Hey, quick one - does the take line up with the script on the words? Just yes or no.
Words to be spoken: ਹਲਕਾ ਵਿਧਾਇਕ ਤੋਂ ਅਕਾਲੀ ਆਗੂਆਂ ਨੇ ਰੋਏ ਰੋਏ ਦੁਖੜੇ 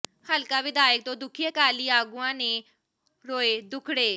no